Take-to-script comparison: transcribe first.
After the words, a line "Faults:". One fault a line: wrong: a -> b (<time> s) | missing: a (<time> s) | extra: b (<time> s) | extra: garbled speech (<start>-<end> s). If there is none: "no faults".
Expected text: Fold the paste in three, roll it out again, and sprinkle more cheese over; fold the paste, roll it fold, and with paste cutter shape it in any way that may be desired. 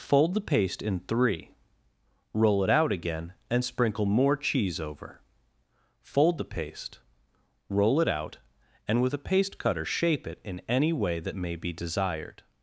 Fold the paste in three, roll it out again, and sprinkle more cheese over; fold the paste, roll it out, and with a paste cutter shape it in any way that may be desired.
Faults:
wrong: fold -> out (8.1 s)
extra: a (9.1 s)